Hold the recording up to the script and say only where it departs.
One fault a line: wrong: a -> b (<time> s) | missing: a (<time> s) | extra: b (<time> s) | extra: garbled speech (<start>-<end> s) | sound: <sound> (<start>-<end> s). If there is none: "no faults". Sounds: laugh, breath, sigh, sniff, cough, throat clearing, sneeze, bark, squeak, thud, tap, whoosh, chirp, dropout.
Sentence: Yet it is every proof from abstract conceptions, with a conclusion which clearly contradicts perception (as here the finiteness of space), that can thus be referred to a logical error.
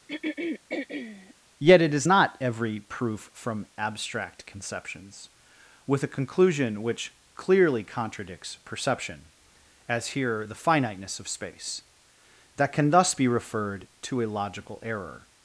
sound: throat clearing (0.1-1.3 s)
extra: not (2.0 s)